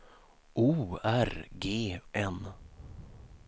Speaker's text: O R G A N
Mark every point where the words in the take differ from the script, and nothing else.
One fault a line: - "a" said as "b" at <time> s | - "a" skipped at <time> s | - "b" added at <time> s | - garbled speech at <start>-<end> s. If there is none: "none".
- "A" skipped at 2.0 s